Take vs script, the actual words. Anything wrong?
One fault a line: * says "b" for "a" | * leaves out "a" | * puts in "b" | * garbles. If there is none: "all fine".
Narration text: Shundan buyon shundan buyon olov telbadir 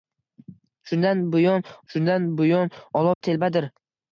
all fine